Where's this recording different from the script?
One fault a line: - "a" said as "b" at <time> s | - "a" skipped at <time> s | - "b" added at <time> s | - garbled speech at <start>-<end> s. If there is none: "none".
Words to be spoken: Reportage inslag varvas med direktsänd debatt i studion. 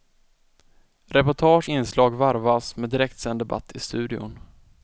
none